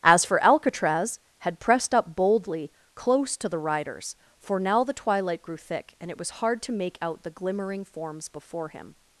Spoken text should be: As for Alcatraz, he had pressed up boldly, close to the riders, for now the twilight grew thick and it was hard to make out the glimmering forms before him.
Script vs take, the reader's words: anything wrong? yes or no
yes